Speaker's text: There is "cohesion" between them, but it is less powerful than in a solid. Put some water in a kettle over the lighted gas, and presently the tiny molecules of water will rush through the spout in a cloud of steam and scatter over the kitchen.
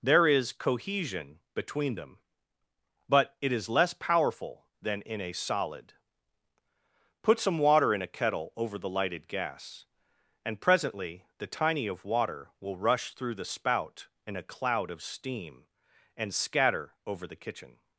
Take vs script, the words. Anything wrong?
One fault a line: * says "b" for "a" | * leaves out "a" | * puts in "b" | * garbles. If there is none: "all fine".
* leaves out "molecules"